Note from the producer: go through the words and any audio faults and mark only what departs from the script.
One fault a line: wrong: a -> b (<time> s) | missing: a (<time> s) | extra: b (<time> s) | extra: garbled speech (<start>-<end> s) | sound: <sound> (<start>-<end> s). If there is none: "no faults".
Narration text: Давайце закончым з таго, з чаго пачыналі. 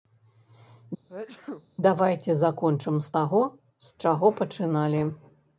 sound: sneeze (1.1-1.7 s)